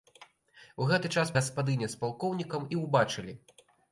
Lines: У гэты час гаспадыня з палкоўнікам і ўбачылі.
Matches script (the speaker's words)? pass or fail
pass